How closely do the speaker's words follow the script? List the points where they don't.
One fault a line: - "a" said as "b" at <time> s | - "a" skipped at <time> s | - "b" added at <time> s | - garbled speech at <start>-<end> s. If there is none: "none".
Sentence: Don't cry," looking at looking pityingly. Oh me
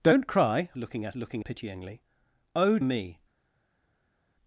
none